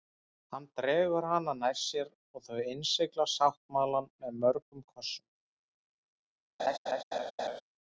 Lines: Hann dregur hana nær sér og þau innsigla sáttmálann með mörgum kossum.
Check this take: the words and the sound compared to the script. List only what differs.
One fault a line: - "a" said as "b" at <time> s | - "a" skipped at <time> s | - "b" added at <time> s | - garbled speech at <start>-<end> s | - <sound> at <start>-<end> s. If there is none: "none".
- laugh at 6.6-7.6 s